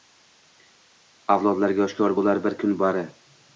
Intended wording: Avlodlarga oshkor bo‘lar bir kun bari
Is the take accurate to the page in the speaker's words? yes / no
yes